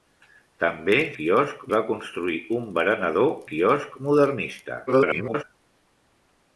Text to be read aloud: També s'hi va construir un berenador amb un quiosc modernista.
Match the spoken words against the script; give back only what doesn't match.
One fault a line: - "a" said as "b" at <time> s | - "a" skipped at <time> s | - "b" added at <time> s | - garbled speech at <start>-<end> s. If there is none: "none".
- "s'hi" said as "quiosc" at 1.2 s
- "amb un" skipped at 3.3 s
- garbled speech at 4.9-5.4 s